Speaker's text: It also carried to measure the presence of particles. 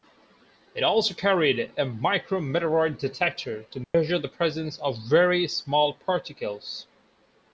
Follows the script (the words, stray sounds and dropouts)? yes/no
no